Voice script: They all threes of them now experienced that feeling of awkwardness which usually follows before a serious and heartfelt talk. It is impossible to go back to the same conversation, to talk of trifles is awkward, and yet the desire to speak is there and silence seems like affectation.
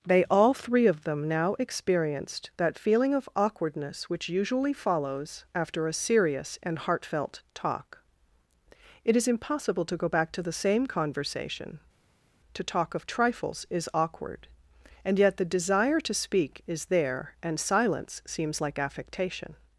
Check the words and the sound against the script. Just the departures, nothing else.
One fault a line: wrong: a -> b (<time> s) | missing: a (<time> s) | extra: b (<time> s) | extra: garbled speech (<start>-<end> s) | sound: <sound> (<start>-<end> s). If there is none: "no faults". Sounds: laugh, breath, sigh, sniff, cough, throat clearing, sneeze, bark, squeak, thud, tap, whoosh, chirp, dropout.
wrong: threes -> three (0.6 s)
wrong: before -> after (5.5 s)